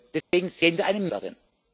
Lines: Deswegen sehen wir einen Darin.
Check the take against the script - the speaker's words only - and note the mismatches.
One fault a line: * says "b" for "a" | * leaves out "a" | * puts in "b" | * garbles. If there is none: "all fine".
all fine